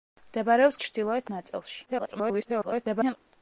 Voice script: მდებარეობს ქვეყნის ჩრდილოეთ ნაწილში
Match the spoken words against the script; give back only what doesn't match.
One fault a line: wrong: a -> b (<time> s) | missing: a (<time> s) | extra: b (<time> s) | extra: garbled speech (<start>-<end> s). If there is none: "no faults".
missing: ქვეყნის (0.8 s)
extra: garbled speech (1.9-3.2 s)